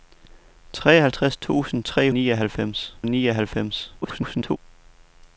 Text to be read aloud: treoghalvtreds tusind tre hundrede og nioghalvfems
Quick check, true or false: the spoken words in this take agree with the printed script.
false